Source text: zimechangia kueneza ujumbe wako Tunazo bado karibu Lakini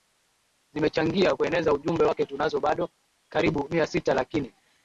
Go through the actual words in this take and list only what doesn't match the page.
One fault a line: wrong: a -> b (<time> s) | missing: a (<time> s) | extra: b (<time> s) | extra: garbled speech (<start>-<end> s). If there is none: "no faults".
wrong: wako -> wake (2.0 s)
extra: Mia sita (3.7 s)